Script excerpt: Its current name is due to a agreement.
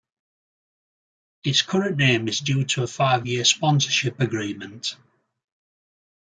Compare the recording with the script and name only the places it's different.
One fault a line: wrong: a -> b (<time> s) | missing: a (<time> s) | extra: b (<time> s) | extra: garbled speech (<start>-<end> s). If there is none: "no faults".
extra: five year sponsorship (2.9 s)